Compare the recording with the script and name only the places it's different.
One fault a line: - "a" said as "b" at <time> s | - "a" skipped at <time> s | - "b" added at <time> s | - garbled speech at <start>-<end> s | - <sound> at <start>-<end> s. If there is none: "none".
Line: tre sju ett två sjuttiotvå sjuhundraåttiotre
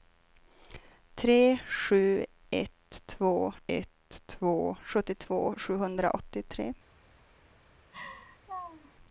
- "ett två" added at 3.7 s
- laugh at 7.9-8.9 s